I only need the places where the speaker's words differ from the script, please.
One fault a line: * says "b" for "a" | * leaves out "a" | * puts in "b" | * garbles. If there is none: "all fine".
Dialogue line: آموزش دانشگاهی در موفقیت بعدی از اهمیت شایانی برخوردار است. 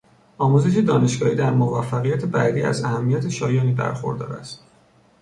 all fine